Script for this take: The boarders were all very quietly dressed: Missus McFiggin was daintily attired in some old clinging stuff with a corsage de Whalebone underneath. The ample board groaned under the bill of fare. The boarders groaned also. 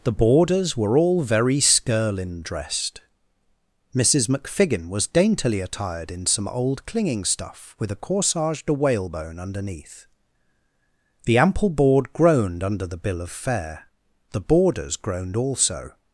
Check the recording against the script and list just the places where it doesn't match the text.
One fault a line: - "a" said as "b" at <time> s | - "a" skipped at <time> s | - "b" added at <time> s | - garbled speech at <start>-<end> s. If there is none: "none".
- "quietly" said as "skirlin" at 1.6 s